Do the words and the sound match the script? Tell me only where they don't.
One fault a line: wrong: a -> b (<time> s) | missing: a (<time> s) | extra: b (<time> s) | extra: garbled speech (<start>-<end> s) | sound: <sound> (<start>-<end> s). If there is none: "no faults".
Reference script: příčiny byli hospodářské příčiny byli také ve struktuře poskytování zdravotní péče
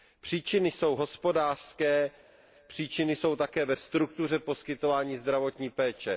wrong: byli -> jsou (0.7 s)
wrong: byli -> jsou (3.1 s)